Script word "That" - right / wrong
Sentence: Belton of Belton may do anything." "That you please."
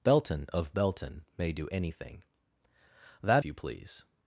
right